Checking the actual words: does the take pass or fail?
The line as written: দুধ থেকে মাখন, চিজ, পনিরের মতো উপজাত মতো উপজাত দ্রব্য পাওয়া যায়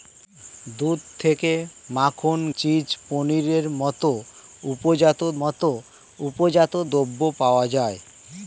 pass